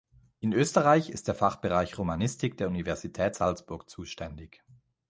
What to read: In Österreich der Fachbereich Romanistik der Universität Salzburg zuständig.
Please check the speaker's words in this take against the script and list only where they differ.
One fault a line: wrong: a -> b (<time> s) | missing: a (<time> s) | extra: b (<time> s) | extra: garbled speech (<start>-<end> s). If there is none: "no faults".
extra: ist (1.1 s)